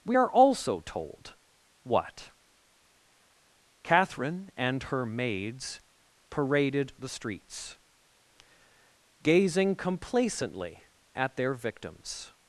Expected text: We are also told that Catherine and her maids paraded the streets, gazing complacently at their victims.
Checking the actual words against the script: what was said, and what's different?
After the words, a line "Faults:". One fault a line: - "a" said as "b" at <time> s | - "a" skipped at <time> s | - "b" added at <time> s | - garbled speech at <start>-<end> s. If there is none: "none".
We are also told what Catherine and her maids paraded the streets, gazing complacently at their victims.
Faults:
- "that" said as "what" at 1.8 s